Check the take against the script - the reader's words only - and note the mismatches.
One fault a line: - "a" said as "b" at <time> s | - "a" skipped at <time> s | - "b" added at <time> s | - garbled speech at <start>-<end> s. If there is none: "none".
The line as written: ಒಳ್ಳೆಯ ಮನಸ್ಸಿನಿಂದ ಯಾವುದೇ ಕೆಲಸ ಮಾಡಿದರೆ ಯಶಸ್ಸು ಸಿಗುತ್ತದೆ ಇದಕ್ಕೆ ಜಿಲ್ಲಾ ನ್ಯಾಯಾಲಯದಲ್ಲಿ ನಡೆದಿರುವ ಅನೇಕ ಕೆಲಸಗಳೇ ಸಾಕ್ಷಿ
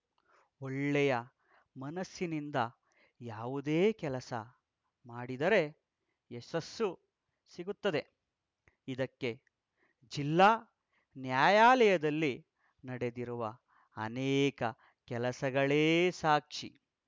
none